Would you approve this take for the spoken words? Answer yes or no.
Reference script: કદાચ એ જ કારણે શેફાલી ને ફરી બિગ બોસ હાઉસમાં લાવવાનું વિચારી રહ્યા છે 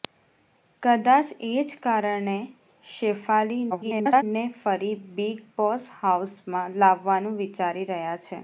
no